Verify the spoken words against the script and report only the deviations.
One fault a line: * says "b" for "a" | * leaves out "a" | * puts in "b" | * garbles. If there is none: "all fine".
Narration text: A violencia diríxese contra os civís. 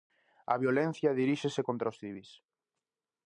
all fine